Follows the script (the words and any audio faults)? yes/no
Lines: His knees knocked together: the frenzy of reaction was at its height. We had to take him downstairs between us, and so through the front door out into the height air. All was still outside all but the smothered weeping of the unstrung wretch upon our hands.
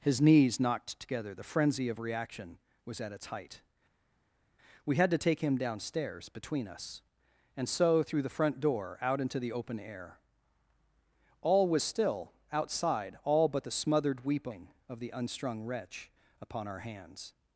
no